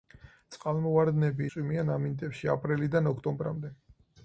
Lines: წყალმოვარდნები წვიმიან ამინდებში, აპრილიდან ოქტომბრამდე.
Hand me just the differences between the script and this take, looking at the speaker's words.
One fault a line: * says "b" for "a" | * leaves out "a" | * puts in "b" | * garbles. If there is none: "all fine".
all fine